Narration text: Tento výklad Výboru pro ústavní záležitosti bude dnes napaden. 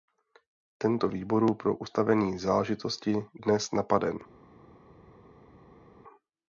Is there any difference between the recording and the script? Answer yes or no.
yes